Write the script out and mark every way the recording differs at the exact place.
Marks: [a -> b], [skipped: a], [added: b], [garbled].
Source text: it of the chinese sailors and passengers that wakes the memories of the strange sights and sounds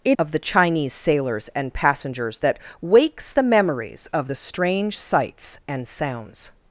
it of the chinese sailors and passengers that wakes the memories of the strange sights and sounds